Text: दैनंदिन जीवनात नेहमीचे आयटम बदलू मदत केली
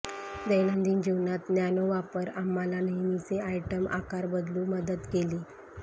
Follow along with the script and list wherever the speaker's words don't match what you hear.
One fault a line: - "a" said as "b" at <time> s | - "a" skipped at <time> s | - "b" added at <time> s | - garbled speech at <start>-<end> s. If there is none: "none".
- "नॅनो वापर आम्हाला" added at 1.5 s
- "आकार" added at 3.9 s